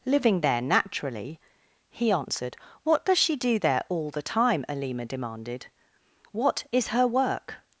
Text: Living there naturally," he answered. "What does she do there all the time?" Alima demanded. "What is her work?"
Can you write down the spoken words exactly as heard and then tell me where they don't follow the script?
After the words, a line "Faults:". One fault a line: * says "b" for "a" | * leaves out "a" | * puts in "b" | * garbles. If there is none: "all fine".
Living there naturally," he answered. "What does she do there all the time?" Alima demanded. "What is her work?"
Faults:
all fine